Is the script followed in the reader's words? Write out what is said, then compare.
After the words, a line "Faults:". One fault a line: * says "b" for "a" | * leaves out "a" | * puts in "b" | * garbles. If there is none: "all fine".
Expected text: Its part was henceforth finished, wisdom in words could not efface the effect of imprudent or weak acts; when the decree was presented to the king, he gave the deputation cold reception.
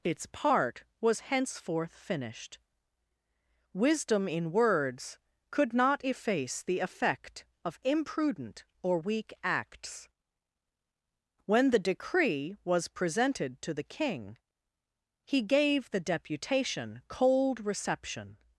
Its part was henceforth finished, wisdom in words could not efface the effect of imprudent or weak acts; when the decree was presented to the king, he gave the deputation cold reception.
Faults:
all fine